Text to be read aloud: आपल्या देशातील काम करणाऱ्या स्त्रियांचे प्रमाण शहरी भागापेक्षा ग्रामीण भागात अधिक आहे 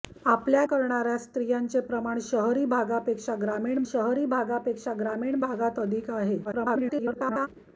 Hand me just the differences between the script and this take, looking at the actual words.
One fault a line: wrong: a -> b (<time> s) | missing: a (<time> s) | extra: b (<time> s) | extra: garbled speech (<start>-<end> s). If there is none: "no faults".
missing: देशातील काम (0.6 s)
extra: शहरी भागापेक्षा ग्रामीण (3.8 s)
extra: garbled speech (6.4-7.5 s)